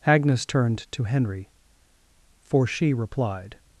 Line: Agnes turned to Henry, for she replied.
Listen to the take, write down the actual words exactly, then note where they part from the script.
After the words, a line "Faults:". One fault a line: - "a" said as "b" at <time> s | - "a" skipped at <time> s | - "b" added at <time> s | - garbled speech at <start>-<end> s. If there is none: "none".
Agnes turned to Henry, for she replied.
Faults:
none